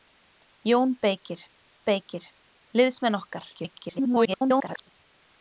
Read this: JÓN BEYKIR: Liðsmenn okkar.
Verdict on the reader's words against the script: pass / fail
fail